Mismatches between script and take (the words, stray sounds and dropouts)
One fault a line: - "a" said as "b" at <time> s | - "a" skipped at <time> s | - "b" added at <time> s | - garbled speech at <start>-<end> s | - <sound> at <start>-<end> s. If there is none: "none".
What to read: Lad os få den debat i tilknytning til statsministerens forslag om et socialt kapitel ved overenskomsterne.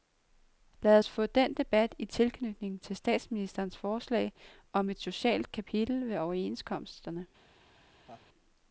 - laugh at 8.1-8.3 s